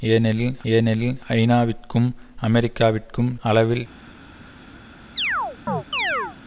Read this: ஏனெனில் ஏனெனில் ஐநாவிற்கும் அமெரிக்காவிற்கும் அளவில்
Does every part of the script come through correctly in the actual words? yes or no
yes